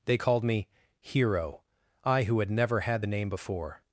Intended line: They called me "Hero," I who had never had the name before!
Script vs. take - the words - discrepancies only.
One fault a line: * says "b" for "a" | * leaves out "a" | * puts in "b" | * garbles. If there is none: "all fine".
all fine